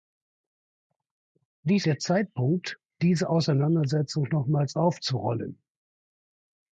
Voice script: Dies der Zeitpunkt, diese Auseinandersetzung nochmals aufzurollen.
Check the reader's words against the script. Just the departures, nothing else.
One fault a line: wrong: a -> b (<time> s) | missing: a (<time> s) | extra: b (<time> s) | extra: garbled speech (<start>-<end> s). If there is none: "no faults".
no faults